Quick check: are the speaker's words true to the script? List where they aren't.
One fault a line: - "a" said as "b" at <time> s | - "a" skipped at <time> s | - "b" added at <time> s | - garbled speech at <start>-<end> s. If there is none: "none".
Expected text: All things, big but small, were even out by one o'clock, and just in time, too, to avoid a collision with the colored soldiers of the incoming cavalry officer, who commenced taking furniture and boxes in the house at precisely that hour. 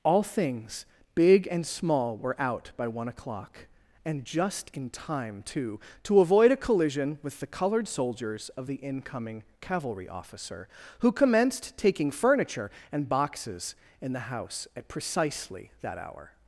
- "but" said as "and" at 1.5 s
- "even" skipped at 2.4 s